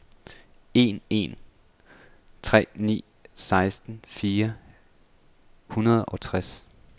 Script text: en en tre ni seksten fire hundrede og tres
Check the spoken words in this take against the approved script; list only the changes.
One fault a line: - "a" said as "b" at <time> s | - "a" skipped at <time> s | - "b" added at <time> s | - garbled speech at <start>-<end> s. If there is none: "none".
none